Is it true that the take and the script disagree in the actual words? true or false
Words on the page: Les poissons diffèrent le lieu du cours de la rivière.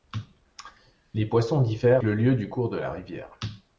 false